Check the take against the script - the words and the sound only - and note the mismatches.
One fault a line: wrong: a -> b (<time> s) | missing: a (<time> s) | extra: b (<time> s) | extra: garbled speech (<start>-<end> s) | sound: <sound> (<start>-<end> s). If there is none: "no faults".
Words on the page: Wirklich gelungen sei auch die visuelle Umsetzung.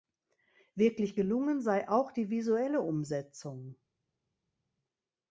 no faults